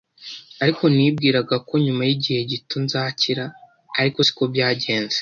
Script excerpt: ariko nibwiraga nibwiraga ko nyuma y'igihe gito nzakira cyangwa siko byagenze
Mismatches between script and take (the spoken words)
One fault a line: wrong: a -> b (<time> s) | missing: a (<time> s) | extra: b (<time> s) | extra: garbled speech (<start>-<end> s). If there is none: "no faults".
missing: nibwiraga (1.6 s)
wrong: cyangwa -> ariko (4.0 s)